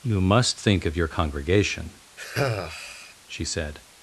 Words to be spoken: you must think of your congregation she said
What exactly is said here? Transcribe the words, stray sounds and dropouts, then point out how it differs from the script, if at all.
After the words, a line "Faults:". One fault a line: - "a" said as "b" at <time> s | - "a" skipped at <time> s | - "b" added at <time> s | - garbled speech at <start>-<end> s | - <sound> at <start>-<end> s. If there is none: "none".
you must think of your congregation she said
Faults:
- sigh at 2.2-3.1 s